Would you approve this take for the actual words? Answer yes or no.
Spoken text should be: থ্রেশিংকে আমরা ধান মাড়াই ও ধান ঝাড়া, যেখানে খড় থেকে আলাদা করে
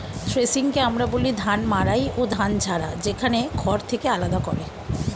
no